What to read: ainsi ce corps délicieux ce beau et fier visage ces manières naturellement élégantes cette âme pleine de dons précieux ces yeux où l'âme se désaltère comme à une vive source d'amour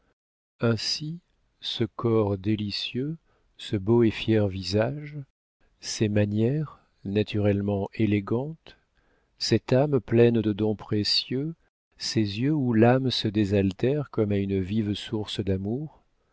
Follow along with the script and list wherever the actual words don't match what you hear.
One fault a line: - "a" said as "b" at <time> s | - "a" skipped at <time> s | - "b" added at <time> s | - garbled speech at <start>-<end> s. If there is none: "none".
none